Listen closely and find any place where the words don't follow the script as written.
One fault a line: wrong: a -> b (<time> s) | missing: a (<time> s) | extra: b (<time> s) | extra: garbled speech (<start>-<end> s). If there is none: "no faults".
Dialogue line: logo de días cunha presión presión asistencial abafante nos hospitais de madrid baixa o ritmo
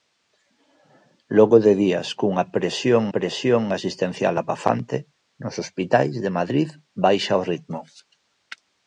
no faults